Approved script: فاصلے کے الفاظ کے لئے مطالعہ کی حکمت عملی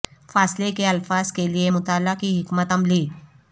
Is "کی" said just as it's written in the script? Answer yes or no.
yes